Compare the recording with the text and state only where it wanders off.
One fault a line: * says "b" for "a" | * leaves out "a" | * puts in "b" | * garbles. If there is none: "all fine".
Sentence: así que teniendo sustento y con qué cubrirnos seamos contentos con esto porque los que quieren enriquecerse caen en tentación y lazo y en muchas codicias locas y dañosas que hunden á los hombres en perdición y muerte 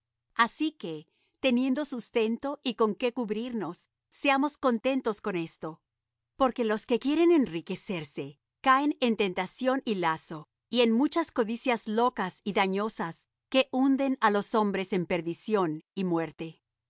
all fine